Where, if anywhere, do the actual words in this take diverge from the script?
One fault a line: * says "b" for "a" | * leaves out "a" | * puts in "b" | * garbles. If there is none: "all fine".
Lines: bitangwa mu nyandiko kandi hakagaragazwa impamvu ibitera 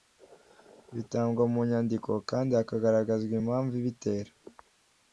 all fine